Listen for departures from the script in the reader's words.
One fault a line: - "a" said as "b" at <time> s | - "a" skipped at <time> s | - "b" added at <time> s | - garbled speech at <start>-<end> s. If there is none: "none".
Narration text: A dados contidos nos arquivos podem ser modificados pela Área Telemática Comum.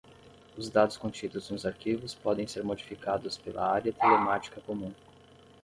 - "A" said as "Os" at 0.6 s